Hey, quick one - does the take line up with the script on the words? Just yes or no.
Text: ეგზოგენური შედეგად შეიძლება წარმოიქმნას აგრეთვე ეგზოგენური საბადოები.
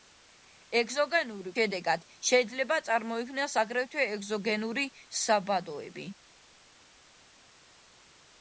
yes